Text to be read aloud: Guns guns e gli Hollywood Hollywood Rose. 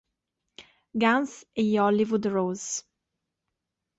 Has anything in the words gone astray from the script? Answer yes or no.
yes